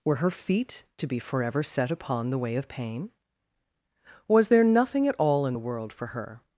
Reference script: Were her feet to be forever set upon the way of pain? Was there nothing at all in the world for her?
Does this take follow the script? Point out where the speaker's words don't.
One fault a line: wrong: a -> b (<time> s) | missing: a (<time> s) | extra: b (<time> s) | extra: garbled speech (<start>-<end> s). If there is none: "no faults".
no faults